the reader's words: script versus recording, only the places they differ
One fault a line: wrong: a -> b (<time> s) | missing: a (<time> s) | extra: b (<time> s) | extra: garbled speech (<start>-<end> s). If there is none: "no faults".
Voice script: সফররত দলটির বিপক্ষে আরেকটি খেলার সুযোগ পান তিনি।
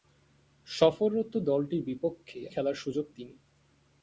missing: আরেকটি (2.4 s)
missing: পান (3.1 s)